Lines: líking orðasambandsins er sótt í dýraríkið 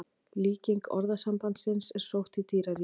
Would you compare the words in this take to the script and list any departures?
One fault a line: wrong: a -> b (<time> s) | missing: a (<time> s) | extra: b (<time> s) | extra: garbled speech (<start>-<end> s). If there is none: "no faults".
no faults